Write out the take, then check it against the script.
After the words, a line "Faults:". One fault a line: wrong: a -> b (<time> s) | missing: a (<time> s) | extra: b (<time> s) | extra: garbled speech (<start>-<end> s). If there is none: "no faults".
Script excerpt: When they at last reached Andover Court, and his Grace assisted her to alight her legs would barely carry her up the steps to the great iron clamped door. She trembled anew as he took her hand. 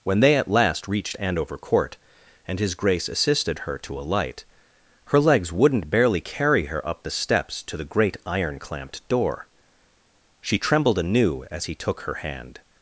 When they at last reached Andover Court, and his Grace assisted her to alight her legs wouldn't barely carry her up the steps to the great iron clamped door. She trembled anew as he took her hand.
Faults:
wrong: would -> wouldn't (5.5 s)